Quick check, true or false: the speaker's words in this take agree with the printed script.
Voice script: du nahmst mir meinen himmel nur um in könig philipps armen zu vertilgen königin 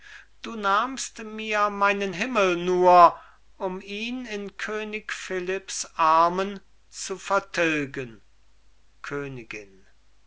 false